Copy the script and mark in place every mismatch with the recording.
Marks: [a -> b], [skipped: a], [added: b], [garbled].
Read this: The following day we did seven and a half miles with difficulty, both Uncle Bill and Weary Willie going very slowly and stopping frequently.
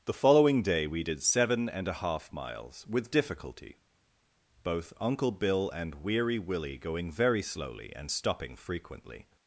The following day we did seven and a half miles with difficulty, both Uncle Bill and Weary Willie going very slowly and stopping frequently.